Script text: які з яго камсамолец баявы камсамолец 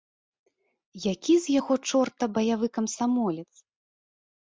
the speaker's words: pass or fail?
fail